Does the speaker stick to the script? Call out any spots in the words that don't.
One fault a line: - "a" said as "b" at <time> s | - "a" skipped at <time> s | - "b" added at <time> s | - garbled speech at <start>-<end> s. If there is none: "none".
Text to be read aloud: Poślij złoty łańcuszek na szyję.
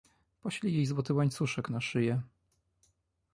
- "jej" added at 0.7 s